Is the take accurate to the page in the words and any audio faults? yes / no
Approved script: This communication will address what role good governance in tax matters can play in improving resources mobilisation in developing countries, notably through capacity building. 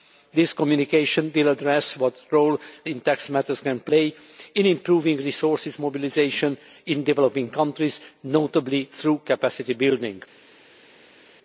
no